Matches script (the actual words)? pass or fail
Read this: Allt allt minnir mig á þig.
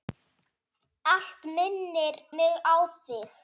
fail